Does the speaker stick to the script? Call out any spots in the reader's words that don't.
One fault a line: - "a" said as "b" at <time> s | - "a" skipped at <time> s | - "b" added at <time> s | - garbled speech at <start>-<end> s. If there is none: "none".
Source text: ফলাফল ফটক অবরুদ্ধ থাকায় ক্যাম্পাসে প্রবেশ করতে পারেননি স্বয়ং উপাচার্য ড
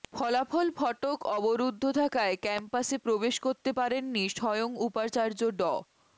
none